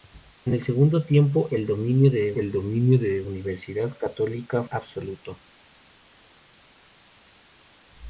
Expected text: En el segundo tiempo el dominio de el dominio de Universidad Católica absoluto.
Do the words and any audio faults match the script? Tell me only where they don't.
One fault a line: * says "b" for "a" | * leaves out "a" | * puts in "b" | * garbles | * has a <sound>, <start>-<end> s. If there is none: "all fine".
all fine